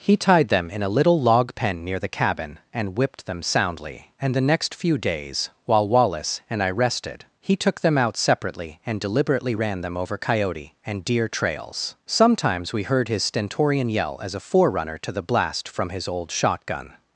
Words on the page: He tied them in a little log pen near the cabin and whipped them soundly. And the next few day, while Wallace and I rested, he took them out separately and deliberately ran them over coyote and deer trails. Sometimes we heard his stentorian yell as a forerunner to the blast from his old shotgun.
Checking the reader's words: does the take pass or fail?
fail